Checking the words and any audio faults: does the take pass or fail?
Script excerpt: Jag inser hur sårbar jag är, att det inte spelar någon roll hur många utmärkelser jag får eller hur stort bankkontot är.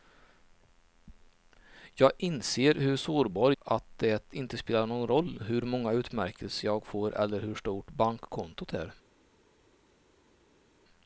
fail